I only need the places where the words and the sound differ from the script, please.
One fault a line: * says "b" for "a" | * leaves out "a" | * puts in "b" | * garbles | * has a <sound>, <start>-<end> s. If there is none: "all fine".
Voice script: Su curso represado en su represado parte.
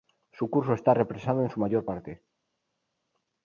* puts in "está"
* says "mayor" for "represado"